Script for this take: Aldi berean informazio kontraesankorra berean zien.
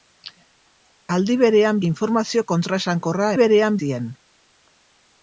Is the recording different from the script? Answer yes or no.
no